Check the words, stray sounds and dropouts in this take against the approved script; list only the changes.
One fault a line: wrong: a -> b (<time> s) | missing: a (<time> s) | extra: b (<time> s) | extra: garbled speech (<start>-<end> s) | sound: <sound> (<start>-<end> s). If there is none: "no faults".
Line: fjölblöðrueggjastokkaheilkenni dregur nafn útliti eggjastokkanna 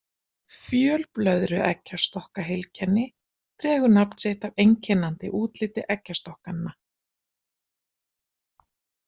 extra: sitt af einkennandi (4.2 s)